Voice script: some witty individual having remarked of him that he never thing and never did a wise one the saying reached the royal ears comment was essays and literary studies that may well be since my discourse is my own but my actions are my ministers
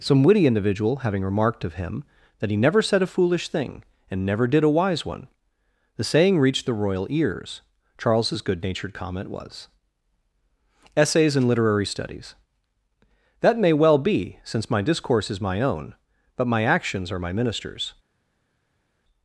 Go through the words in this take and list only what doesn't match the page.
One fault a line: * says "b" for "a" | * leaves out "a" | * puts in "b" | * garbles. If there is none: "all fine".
* puts in "said a foolish"
* puts in "charles's good natured"